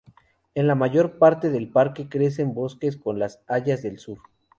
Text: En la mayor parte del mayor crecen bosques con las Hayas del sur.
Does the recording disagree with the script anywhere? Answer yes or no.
yes